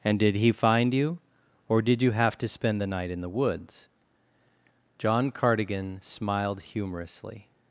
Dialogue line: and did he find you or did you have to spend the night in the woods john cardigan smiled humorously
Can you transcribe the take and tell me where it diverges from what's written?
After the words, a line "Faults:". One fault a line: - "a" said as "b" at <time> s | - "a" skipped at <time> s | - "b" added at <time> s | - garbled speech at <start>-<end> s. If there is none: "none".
and did he find you or did you have to spend the night in the woods john cardigan smiled humorously
Faults:
none